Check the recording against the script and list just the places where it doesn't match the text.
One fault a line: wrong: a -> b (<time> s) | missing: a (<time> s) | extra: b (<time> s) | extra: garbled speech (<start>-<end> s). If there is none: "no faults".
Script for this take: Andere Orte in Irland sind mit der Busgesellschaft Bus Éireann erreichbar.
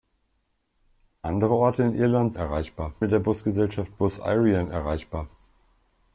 wrong: sind -> erreichbar (2.4 s)